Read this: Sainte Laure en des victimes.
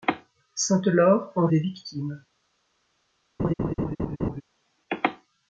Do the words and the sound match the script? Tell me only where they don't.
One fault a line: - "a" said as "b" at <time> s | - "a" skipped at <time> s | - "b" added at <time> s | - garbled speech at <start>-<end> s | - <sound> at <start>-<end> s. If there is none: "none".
- laugh at 3.4-4.4 s